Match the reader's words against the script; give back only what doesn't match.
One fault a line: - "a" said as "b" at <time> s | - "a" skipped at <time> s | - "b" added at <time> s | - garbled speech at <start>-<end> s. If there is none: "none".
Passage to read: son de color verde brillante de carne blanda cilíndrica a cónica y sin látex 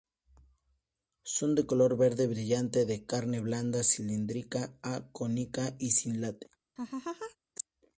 none